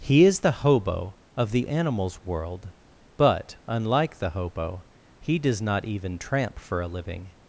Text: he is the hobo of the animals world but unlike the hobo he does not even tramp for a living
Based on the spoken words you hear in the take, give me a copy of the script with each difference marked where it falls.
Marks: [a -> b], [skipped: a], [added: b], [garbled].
he is the hobo of the animals world but unlike the hobo he does not even tramp for a living